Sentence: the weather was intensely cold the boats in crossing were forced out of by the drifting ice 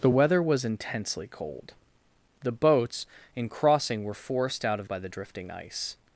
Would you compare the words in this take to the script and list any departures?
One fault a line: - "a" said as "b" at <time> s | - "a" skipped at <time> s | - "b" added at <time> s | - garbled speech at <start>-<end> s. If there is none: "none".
none